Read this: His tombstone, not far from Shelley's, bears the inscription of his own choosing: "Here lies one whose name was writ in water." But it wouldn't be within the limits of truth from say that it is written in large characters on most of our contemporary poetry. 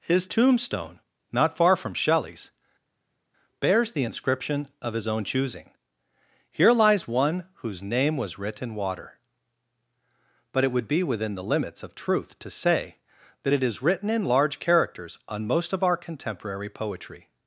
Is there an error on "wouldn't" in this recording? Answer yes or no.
yes